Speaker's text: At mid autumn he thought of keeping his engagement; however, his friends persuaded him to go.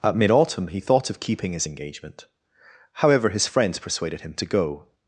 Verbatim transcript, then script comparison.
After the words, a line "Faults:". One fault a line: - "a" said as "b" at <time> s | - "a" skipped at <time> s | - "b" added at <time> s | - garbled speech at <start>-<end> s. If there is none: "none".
At mid autumn he thought of keeping his engagement; however, his friends persuaded him to go.
Faults:
none